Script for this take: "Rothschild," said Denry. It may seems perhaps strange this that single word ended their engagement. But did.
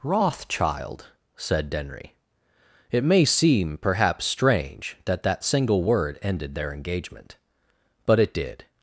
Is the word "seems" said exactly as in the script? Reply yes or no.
no